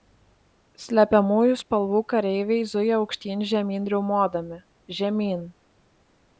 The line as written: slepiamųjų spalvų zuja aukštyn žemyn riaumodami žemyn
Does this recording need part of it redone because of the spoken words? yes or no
yes